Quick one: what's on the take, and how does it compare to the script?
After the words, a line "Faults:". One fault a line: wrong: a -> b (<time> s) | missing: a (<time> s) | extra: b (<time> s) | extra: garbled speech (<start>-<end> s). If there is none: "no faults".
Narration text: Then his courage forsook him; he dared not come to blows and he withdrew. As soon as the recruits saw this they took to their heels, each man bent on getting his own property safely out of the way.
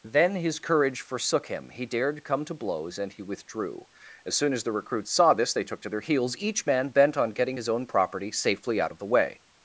Then his courage forsook him; he dared come to blows and he withdrew. As soon as the recruits saw this they took to their heels, each man bent on getting his own property safely out of the way.
Faults:
missing: not (2.2 s)